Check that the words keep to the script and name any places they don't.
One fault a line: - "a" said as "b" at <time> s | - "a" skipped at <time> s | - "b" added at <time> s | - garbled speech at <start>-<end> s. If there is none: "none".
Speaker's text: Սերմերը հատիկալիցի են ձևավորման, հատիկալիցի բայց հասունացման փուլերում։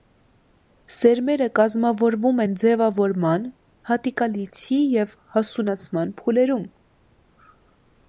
- "հատիկալիցի" said as "կազմավորվում" at 1.6 s
- "բայց" said as "և" at 5.0 s